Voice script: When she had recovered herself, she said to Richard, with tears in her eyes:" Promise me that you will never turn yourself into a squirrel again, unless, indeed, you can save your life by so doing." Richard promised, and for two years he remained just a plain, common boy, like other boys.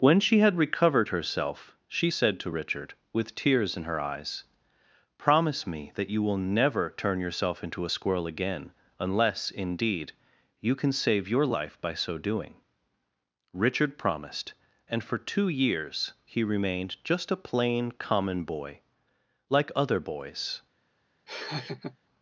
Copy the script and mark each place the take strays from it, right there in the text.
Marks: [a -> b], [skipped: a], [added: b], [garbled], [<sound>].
When she had recovered herself, she said to Richard, with tears in her eyes:" Promise me that you will never turn yourself into a squirrel again, unless, indeed, you can save your life by so doing." Richard promised, and for two years he remained just a plain, common boy, like other boys. [laugh]